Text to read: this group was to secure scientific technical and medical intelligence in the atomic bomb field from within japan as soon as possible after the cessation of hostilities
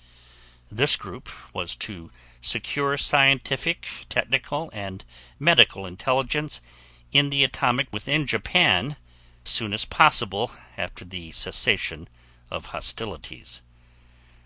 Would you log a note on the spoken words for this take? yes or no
yes